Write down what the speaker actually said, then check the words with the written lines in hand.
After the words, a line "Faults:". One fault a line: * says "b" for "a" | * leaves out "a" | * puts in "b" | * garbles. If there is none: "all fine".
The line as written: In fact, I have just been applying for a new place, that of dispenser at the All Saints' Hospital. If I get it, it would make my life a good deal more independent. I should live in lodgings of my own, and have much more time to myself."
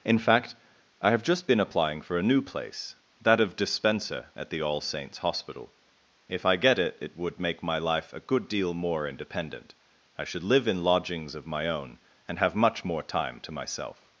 In fact, I have just been applying for a new place, that of dispenser at the All Saints' Hospital. If I get it, it would make my life a good deal more independent. I should live in lodgings of my own, and have much more time to myself."
Faults:
all fine